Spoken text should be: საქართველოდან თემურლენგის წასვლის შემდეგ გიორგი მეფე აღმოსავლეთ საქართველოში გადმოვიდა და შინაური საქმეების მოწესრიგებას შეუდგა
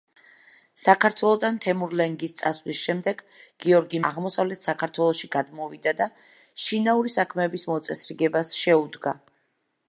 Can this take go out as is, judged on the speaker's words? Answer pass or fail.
fail